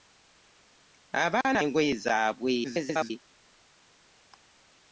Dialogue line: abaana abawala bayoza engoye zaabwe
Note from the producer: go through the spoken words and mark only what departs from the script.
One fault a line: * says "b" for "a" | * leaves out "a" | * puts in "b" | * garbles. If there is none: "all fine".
* leaves out "abawala bayoza"
* garbles